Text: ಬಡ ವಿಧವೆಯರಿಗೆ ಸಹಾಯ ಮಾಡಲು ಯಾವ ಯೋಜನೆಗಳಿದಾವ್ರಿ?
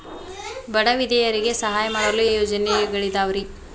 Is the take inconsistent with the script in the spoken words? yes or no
yes